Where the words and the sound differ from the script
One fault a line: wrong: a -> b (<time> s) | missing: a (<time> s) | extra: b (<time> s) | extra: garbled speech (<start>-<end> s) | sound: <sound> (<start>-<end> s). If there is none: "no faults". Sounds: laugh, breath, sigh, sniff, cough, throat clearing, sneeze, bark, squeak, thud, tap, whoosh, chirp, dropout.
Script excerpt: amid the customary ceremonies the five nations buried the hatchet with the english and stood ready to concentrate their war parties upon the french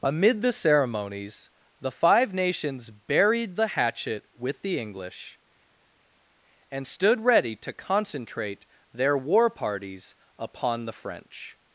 missing: customary (0.5 s)